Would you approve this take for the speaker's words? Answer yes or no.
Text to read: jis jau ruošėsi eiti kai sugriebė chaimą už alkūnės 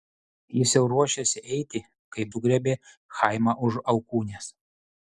yes